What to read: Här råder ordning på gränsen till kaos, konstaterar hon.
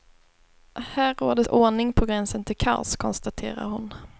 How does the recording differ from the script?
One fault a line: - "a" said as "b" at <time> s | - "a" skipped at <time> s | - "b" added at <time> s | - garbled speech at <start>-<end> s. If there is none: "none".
none